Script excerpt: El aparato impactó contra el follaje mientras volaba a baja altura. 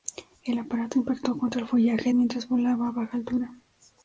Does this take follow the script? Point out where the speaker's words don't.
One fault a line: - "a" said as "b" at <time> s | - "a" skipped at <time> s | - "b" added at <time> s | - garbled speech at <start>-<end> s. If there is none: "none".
none